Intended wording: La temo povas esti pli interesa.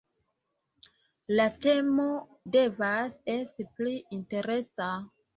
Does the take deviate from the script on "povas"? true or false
true